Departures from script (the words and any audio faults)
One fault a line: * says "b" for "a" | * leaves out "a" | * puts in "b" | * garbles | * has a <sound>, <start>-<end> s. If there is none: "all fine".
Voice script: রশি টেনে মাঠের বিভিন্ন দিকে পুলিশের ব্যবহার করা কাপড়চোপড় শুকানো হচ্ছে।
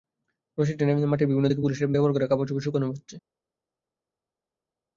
all fine